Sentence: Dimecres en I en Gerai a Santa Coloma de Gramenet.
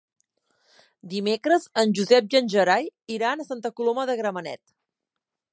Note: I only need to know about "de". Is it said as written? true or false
true